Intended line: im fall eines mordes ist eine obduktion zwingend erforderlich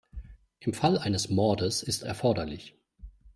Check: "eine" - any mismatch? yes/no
yes